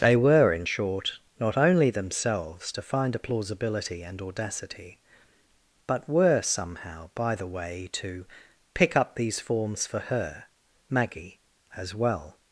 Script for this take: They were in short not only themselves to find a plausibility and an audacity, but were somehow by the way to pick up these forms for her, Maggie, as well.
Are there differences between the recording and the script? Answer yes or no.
yes